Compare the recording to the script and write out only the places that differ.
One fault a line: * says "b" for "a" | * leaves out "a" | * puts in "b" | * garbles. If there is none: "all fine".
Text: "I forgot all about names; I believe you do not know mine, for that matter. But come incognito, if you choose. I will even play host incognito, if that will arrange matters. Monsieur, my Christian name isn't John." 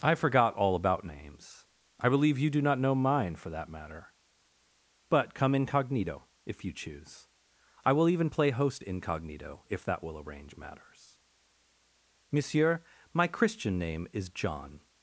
* says "is" for "isn't"